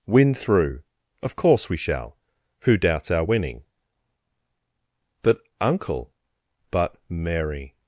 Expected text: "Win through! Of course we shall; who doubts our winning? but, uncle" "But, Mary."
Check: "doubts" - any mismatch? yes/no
no